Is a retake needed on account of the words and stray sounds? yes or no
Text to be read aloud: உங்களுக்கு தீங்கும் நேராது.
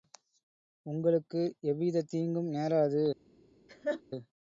yes